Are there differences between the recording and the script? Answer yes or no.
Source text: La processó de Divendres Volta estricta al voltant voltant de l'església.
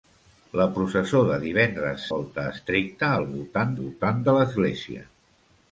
no